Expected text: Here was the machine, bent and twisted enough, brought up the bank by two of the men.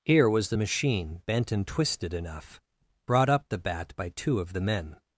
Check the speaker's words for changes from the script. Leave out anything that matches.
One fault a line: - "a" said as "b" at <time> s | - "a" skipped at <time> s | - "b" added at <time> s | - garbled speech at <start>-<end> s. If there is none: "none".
- "bank" said as "bat" at 3.6 s